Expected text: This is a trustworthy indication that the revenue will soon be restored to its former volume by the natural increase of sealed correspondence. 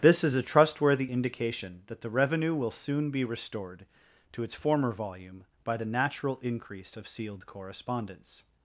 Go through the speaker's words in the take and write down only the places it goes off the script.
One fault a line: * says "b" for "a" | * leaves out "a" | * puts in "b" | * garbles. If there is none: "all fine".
all fine